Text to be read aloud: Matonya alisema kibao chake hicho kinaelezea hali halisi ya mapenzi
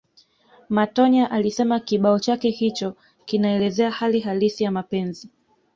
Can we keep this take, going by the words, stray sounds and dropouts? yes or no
yes